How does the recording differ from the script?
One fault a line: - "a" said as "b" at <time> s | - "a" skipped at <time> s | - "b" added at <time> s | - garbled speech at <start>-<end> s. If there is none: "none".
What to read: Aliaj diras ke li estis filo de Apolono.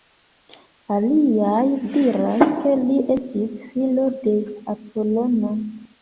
none